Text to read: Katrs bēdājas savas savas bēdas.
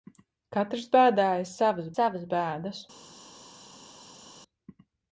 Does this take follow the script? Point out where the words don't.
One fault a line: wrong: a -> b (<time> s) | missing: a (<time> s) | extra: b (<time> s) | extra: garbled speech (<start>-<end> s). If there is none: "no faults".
no faults